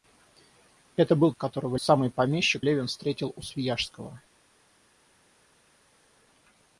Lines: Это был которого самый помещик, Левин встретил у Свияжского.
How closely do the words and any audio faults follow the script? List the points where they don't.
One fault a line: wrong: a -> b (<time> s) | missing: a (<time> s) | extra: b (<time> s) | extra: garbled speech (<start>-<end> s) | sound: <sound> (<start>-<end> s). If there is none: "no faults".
no faults